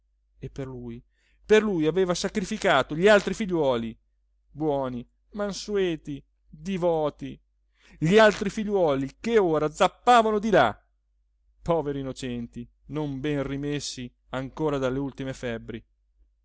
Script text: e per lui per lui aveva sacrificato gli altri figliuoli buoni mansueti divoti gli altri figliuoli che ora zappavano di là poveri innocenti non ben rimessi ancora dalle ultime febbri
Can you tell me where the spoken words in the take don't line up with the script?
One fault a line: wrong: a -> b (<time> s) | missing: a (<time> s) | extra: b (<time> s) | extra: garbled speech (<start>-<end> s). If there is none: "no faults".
no faults